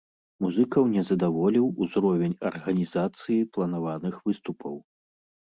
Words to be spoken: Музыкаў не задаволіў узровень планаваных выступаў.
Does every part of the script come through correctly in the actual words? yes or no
no